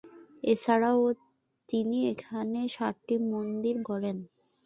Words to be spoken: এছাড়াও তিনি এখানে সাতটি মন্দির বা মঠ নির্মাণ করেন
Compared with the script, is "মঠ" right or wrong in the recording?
wrong